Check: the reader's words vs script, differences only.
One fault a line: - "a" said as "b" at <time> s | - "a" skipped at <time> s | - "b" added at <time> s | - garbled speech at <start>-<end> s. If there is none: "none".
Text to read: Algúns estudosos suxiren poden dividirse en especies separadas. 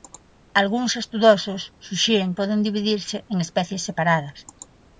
none